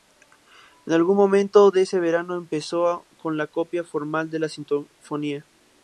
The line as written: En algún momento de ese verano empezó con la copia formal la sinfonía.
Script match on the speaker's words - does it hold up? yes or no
no